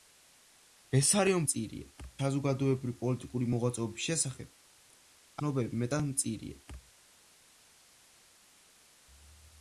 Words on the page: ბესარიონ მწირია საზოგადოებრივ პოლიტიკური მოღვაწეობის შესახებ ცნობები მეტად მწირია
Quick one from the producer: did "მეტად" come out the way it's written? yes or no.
yes